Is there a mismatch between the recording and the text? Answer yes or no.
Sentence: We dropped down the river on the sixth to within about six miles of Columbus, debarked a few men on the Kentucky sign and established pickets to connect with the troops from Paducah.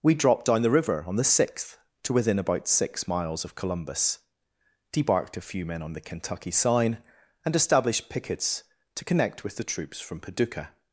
no